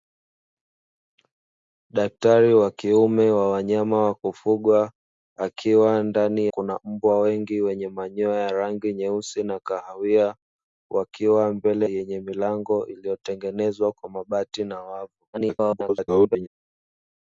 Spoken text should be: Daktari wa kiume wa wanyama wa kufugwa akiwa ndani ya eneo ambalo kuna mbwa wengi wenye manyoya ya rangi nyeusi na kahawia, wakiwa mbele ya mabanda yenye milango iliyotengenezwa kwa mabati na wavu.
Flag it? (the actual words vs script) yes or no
yes